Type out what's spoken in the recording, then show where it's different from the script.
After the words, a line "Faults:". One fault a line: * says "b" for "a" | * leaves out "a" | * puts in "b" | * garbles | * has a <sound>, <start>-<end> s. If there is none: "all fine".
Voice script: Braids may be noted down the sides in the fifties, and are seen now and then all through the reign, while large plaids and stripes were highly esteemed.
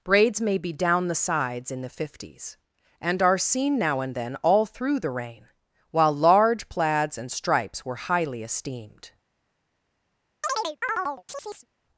Braids may be down the sides in the fifties, and are seen now and then all through the reign, while large plaids and stripes were highly esteemed.
Faults:
* leaves out "noted"
* has a chirp, 10.4-11.7 s